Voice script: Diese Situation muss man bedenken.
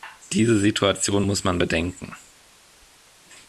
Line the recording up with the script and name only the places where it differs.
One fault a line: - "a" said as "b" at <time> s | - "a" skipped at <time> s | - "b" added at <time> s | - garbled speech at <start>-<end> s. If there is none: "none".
none